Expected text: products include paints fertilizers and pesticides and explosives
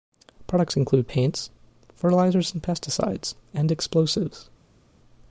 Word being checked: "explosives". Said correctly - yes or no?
yes